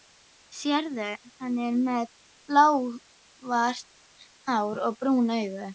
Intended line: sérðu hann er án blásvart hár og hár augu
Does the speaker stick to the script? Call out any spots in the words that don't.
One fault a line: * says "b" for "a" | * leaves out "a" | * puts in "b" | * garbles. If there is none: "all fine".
* says "með" for "án"
* says "brún" for "hár"